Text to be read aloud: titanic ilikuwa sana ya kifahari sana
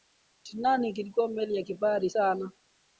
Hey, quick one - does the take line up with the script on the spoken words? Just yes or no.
no